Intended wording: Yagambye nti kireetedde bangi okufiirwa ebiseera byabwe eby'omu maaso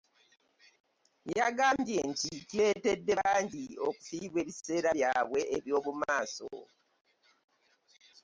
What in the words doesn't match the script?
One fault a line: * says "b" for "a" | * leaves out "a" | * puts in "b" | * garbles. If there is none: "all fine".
all fine